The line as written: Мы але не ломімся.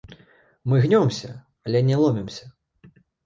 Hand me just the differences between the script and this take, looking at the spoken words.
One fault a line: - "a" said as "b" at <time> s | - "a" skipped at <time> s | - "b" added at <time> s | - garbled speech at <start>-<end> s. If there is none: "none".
- "гнёмся" added at 0.8 s